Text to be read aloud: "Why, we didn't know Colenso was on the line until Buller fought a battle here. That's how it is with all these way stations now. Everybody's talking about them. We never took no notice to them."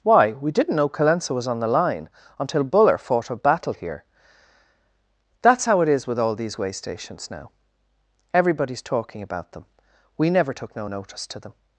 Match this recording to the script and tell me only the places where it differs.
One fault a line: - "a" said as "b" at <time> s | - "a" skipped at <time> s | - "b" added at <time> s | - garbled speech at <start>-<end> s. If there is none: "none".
none